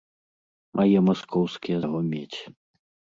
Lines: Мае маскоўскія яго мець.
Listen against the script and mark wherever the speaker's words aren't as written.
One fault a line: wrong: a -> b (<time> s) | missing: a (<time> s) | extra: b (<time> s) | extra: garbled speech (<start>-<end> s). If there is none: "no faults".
no faults